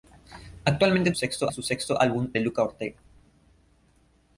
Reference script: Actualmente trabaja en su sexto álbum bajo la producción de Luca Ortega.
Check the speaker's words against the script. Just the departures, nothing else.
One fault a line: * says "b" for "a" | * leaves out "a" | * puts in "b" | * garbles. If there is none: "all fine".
* says "sexto" for "trabaja"
* leaves out "bajo la producción"